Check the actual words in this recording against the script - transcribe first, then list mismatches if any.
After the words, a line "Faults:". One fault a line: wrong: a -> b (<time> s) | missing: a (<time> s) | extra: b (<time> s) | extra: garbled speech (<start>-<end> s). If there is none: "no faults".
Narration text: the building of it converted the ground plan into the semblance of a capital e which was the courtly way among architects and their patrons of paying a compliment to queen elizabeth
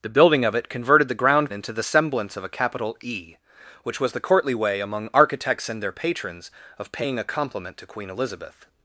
the building of it converted the ground into the semblance of a capital e which was the courtly way among architects and their patrons of paying a compliment to queen elizabeth
Faults:
missing: plan (1.5 s)